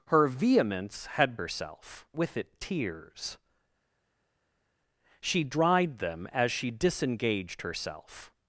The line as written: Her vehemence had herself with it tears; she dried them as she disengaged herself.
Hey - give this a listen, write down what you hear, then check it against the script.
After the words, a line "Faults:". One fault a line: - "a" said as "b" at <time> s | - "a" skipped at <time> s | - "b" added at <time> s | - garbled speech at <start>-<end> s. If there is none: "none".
Her vehemence had herself with it tears; she dried them as she disengaged herself.
Faults:
none